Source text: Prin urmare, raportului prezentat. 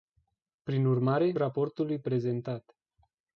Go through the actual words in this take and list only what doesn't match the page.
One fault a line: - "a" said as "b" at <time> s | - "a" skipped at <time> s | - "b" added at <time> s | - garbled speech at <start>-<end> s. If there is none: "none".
none